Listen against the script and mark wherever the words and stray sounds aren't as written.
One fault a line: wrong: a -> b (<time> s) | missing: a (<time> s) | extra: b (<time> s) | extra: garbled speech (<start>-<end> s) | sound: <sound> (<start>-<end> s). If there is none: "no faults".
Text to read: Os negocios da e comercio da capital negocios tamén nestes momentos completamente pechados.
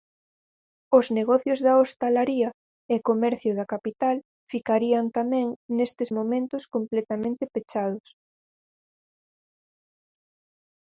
extra: hostalaría (1.8 s)
wrong: negocios -> ficarían (4.5 s)